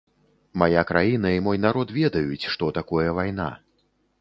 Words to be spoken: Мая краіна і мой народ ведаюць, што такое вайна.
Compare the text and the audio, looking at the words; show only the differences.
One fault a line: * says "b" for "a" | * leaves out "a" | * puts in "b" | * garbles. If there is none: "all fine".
all fine